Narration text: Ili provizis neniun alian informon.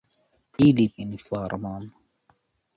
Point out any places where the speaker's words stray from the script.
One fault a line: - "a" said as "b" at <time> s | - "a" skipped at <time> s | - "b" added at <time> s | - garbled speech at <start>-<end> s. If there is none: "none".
- "provizis neniun alian" skipped at 0.8 s